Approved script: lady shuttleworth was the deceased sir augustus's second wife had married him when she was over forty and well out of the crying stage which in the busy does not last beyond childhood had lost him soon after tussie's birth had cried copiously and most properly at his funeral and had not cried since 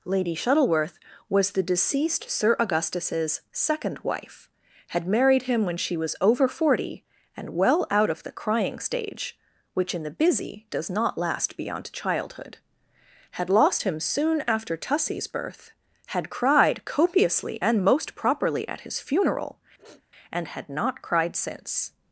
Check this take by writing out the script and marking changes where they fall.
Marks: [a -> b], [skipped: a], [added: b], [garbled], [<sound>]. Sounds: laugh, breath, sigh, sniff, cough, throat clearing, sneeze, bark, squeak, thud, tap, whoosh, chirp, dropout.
lady shuttleworth was the deceased sir augustus's second wife had married him when she was over forty and well out of the crying stage which in the busy does not last beyond childhood had lost him soon after tussie's birth had cried copiously and most properly at his funeral [sniff] and had not cried since